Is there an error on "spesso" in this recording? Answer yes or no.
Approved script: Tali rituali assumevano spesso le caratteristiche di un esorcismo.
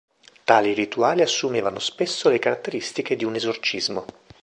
no